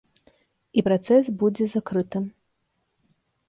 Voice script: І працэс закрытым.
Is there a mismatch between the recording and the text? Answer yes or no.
yes